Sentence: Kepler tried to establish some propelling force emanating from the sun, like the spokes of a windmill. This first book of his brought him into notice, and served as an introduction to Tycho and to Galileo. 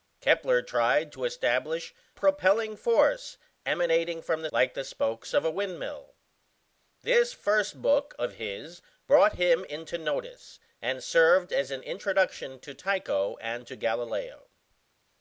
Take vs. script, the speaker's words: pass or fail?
fail